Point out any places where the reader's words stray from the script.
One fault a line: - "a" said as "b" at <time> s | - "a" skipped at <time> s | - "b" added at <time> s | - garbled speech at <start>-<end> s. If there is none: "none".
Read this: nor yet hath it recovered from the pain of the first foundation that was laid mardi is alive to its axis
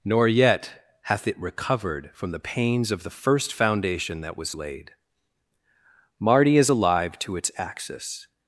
- "pain" said as "pains" at 2.4 s